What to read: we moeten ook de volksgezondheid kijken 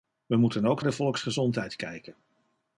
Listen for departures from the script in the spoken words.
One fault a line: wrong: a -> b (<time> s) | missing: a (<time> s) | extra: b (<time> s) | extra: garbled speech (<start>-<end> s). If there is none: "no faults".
no faults